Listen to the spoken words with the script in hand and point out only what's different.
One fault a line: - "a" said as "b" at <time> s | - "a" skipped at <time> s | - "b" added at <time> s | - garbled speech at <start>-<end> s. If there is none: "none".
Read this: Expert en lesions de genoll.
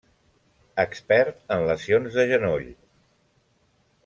none